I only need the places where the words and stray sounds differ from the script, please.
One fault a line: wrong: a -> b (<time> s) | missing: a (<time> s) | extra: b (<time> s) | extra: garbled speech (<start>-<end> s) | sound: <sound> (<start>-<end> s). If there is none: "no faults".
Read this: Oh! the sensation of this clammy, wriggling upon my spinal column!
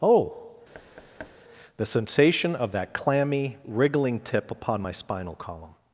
sound: thud (0.7-1.4 s)
wrong: this -> that (2.7 s)
extra: tip (4.2 s)